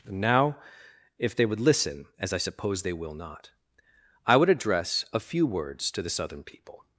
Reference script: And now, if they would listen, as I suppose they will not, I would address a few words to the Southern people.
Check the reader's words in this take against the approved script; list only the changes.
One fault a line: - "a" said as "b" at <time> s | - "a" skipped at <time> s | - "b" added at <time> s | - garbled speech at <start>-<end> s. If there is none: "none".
none